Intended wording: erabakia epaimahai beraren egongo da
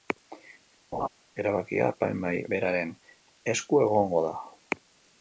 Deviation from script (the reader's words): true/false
true